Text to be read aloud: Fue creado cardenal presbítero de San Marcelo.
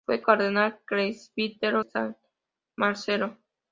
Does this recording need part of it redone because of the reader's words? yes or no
yes